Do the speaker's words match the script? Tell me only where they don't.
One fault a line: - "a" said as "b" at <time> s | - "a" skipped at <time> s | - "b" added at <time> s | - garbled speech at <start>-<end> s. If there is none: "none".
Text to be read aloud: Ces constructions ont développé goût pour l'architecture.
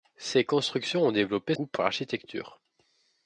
none